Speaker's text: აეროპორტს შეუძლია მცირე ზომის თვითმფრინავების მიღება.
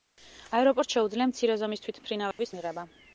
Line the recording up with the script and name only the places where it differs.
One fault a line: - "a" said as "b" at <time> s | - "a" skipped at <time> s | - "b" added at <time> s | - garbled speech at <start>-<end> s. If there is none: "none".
none